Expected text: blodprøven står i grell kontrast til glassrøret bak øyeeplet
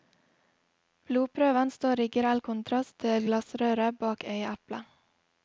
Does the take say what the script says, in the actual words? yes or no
yes